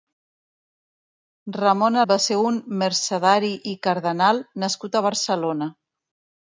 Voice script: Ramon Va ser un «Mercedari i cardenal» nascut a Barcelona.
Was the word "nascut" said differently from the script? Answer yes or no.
no